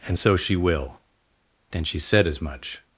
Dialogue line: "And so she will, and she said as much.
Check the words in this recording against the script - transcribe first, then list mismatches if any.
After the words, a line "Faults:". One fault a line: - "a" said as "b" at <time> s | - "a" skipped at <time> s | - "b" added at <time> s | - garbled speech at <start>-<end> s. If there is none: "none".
"And so she will, then she said as much.
Faults:
- "and" said as "then" at 1.7 s